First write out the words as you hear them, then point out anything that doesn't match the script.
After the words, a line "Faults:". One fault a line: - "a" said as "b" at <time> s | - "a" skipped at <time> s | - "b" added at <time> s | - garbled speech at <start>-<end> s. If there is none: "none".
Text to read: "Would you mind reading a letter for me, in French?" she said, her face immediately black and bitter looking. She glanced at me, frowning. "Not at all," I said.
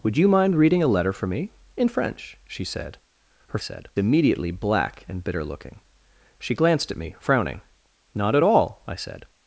"Would you mind reading a letter for me, in French?" she said, her said immediately black and bitter looking. She glanced at me, frowning. "Not at all," I said.
Faults:
- "face" said as "said" at 3.6 s